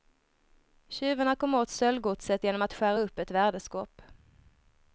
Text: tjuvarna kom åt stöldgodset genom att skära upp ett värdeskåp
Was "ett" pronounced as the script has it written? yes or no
yes